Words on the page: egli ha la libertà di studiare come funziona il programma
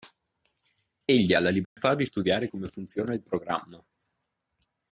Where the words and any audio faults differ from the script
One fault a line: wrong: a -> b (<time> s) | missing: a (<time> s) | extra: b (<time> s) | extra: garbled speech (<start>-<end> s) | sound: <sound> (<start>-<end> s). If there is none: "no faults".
sound: dropout (1.6-1.8 s)